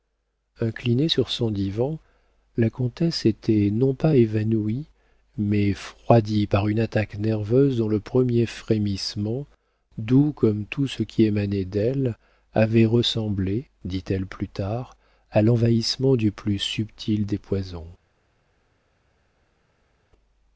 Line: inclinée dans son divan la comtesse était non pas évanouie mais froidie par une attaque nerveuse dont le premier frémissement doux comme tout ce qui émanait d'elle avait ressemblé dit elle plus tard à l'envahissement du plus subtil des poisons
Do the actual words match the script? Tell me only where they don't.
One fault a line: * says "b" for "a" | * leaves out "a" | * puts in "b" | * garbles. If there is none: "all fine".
* says "sur" for "dans"